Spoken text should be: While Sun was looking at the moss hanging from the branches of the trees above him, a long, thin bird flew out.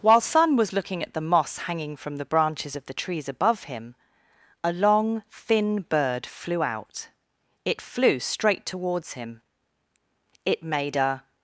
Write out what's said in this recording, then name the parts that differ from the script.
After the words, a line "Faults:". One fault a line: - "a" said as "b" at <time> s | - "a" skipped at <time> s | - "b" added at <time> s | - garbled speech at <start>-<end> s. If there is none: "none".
While Sun was looking at the moss hanging from the branches of the trees above him, a long, thin bird flew out. It flew straight towards him. It made a
Faults:
- "It flew straight towards him It made a" added at 7.7 s